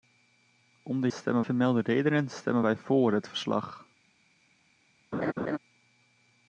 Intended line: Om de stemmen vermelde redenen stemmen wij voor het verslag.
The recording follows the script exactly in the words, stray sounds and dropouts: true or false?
false